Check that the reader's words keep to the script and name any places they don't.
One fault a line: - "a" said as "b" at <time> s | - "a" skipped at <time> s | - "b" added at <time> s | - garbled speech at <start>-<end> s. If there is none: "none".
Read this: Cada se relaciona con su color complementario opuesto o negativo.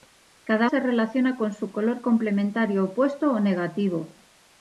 none